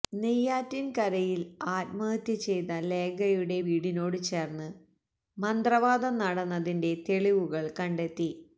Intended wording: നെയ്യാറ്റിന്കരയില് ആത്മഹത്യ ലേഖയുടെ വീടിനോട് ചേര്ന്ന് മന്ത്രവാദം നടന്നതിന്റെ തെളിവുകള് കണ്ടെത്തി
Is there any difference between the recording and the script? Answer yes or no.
yes